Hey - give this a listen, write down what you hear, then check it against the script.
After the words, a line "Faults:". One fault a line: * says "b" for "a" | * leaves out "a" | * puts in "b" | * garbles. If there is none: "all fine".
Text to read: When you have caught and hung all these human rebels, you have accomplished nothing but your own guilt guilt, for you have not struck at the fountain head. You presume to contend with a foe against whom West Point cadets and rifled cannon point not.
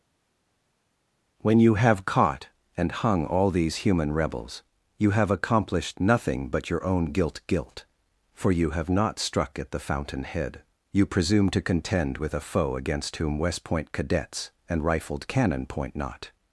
When you have caught and hung all these human rebels, you have accomplished nothing but your own guilt guilt, for you have not struck at the fountain head. You presume to contend with a foe against whom West Point cadets and rifled cannon point not.
Faults:
all fine